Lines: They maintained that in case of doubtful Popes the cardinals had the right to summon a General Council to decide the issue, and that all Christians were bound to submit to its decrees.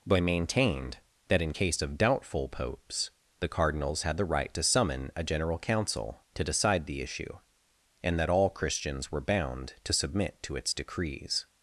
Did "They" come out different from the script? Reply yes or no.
yes